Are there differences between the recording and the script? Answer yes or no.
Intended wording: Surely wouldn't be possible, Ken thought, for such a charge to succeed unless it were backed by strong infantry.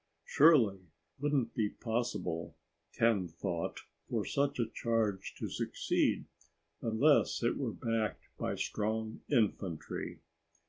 no